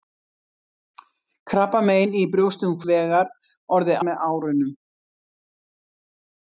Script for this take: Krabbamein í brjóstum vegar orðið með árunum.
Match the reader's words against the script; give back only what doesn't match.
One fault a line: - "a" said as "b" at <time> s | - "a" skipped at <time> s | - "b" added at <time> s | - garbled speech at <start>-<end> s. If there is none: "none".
none